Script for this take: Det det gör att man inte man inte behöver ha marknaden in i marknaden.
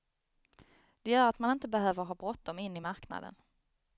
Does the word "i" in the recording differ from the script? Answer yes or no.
no